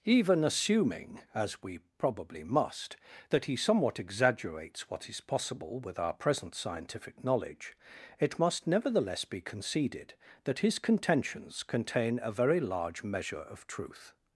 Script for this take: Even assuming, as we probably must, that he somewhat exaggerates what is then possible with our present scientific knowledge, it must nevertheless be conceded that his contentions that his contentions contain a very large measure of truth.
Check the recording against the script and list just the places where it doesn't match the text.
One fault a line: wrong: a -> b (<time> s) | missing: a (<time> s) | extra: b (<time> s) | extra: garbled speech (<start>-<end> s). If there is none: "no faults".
missing: then (5.2 s)
missing: that his contentions (11.6 s)